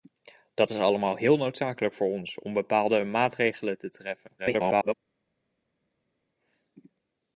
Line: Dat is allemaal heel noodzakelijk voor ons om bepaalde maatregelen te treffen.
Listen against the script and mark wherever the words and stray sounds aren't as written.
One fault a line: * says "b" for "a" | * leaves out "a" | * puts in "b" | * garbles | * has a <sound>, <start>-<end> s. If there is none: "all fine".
* garbles